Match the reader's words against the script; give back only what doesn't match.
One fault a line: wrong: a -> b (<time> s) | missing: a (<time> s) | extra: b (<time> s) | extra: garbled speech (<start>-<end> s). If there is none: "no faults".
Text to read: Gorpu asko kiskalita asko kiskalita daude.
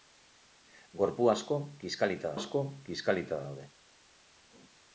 no faults